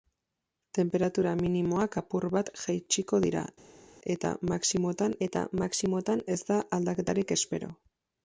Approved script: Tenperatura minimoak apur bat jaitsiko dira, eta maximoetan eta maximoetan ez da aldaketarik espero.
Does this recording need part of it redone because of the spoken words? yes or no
no